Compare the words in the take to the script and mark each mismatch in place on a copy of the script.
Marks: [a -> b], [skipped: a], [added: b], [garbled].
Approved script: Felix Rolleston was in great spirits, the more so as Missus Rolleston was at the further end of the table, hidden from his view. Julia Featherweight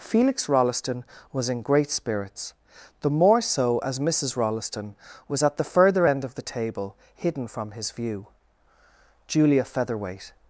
Felix Rolleston was in great spirits, the more so as Missus Rolleston was at the further end of the table, hidden from his view. Julia Featherweight